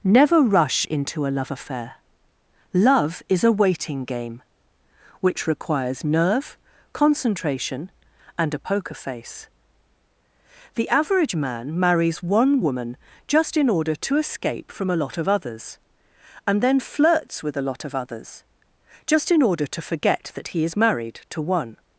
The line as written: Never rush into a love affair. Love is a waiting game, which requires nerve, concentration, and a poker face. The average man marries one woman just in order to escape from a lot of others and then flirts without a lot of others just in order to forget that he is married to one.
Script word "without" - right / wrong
wrong